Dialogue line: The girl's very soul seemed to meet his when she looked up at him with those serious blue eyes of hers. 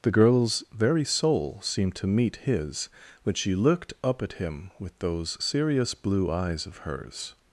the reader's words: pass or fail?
pass